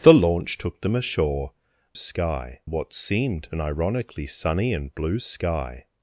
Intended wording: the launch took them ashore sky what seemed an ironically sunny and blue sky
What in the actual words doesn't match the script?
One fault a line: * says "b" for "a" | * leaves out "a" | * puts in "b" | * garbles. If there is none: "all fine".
all fine